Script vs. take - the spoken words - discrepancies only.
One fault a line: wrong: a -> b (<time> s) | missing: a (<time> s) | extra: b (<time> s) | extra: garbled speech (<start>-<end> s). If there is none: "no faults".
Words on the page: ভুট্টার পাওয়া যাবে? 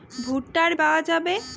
no faults